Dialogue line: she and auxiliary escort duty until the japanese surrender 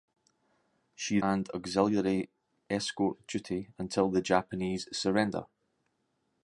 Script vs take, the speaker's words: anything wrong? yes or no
no